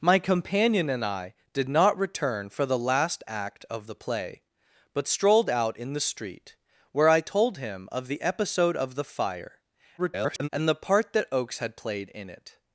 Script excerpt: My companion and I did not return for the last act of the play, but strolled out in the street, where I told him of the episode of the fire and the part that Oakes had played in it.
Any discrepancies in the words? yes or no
yes